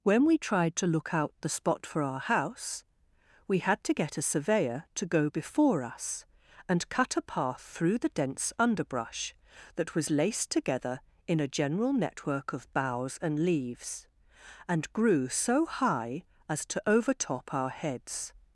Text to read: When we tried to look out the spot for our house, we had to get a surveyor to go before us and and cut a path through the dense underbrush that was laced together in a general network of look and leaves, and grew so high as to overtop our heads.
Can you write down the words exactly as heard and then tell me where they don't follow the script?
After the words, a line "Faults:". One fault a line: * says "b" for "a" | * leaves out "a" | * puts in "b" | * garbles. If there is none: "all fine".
When we tried to look out the spot for our house, we had to get a surveyor to go before us and cut a path through the dense underbrush that was laced together in a general network of boughs and leaves, and grew so high as to overtop our heads.
Faults:
* leaves out "and"
* says "boughs" for "look"